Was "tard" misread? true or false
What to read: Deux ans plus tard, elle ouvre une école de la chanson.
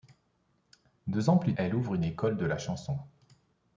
true